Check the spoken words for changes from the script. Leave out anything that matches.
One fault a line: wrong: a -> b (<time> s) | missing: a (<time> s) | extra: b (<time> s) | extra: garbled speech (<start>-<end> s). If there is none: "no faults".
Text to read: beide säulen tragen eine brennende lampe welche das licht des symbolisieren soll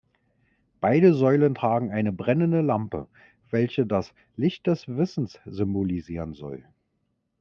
extra: wissens (4.9 s)